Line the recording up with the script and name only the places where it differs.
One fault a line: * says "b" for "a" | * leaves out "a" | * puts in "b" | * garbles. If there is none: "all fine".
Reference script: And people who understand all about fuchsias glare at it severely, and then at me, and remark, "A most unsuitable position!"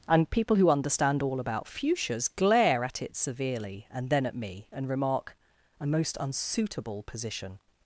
all fine